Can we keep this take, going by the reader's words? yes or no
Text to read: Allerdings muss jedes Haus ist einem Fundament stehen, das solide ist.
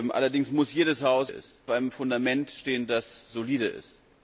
yes